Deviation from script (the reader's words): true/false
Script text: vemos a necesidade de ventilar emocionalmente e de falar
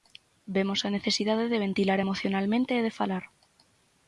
false